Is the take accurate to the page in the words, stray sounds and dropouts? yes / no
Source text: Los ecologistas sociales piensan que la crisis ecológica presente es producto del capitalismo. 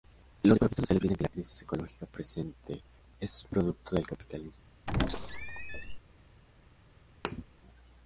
no